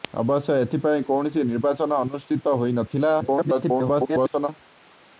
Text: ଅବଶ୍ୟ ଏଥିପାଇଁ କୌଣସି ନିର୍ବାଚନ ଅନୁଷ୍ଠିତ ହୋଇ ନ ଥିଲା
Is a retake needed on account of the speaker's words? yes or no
yes